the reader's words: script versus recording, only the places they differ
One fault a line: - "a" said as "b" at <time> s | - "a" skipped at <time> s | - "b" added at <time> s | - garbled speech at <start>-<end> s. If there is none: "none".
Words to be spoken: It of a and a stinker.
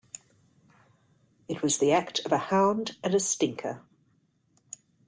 - "was the act" added at 1.6 s
- "hound" added at 2.4 s